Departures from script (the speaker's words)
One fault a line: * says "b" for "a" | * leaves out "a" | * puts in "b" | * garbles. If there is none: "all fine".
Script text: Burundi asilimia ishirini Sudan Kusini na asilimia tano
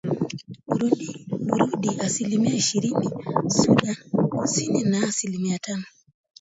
all fine